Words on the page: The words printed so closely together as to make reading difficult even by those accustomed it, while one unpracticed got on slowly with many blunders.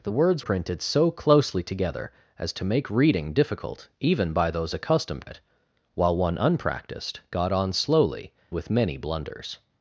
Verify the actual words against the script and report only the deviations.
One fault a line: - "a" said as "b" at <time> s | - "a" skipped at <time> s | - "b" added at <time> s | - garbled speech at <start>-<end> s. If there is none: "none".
none